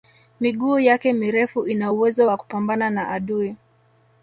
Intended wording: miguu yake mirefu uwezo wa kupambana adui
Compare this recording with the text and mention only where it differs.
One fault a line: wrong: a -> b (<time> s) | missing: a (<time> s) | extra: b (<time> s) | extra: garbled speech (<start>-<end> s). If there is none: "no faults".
extra: ina (1.7 s)
extra: na (2.9 s)